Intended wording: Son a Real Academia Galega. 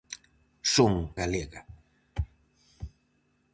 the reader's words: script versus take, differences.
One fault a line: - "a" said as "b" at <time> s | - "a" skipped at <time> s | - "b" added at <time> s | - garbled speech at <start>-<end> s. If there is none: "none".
- "a Real Academia" skipped at 0.9 s